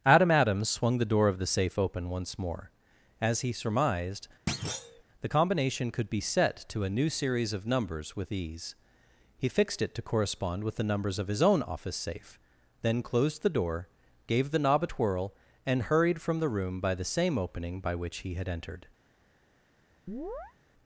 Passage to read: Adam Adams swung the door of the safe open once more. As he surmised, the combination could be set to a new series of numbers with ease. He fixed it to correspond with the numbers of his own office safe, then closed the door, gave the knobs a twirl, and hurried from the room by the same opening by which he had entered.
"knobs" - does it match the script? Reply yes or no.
no